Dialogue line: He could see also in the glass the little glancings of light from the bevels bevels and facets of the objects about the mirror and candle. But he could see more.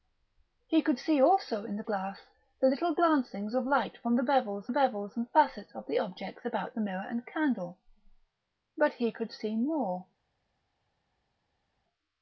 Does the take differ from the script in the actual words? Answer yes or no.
no